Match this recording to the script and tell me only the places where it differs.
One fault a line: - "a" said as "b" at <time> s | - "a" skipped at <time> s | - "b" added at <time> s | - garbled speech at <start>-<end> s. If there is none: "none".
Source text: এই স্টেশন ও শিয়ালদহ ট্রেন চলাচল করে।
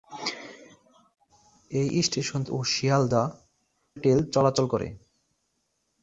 none